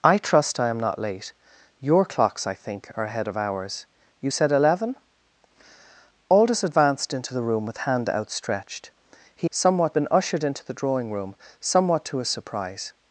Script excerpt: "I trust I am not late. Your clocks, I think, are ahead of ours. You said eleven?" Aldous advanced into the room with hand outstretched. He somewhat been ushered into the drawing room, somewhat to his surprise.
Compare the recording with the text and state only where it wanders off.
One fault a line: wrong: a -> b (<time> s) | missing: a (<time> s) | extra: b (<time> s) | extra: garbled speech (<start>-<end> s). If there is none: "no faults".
no faults